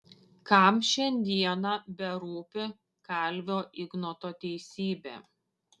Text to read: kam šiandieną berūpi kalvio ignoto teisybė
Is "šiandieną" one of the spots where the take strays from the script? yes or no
no